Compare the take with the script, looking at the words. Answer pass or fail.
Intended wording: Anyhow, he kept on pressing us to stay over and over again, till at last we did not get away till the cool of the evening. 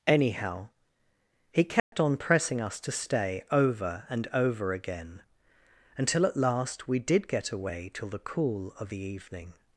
fail